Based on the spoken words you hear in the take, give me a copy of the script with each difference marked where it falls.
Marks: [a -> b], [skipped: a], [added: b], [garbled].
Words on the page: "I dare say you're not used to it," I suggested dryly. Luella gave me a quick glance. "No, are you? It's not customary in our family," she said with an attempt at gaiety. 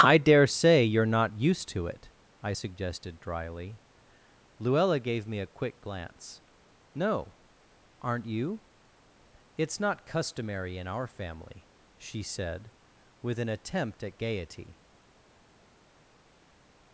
"I dare say you're not used to it," I suggested dryly. Luella gave me a quick glance. "No, [are -> aren't] you? It's not customary in our family," she said with an attempt at gaiety.